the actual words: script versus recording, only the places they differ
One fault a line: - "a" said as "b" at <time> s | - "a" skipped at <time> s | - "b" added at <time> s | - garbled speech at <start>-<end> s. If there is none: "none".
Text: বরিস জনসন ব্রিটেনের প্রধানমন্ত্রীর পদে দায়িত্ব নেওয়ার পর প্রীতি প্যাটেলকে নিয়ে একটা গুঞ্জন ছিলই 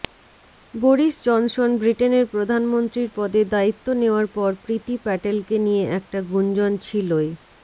none